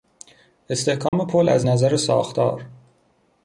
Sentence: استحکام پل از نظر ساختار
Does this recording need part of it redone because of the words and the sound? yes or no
yes